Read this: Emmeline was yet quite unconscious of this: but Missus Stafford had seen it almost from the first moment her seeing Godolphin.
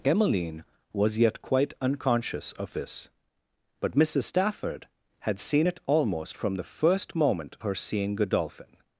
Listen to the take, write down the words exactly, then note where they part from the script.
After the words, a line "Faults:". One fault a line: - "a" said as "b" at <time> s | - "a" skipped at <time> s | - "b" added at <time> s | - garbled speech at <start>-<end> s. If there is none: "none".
Emmeline was yet quite unconscious of this: but Missus Stafford had seen it almost from the first moment her seeing Godolphin.
Faults:
none